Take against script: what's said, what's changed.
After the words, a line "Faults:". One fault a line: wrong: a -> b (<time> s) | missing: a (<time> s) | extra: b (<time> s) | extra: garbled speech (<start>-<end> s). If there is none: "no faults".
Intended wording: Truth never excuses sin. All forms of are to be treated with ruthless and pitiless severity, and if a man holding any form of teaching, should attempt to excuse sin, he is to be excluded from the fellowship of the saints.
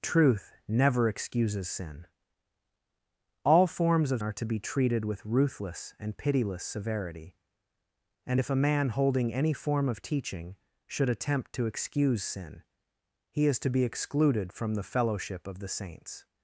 Truth never excuses sin. All forms of are to be treated with ruthless and pitiless severity, and if a man holding any form of teaching, should attempt to excuse sin, he is to be excluded from the fellowship of the saints.
Faults:
no faults